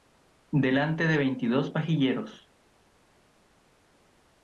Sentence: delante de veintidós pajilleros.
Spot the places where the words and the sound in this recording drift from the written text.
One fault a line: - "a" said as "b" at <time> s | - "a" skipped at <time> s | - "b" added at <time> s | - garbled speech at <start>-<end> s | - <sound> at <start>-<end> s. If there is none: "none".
none